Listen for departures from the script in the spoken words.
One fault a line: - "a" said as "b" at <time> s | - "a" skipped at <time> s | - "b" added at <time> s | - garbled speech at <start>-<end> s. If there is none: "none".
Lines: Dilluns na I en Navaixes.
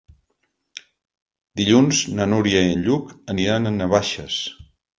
- "Núria" added at 2.3 s
- "Lluc aniran a" added at 2.9 s